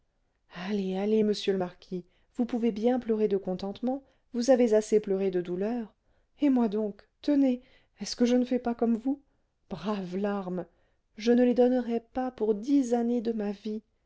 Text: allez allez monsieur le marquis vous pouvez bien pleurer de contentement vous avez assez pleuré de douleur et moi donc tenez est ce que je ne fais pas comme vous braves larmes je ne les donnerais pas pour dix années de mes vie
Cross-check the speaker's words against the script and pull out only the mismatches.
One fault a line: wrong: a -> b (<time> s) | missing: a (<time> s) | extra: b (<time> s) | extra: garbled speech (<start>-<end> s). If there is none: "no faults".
wrong: mes -> ma (13.3 s)